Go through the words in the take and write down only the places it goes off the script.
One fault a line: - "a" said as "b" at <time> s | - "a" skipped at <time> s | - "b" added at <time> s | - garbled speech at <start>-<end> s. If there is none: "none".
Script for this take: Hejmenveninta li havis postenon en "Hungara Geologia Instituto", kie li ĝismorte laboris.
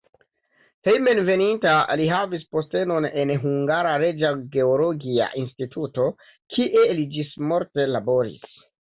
- "Reĝa" added at 4.0 s